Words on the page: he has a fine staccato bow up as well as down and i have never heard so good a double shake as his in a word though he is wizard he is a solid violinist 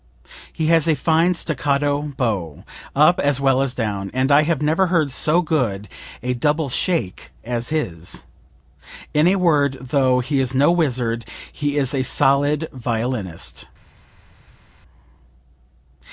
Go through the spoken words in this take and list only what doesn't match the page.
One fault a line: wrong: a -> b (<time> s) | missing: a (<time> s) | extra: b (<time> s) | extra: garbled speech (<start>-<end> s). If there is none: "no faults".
extra: no (10.5 s)